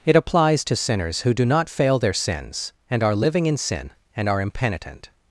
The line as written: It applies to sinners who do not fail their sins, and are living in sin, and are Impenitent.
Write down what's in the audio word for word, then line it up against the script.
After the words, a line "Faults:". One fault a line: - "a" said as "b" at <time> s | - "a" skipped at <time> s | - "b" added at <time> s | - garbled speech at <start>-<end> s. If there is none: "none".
It applies to sinners who do not fail their sins, and are living in sin, and are Impenitent.
Faults:
none